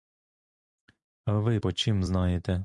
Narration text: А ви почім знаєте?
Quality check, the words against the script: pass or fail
pass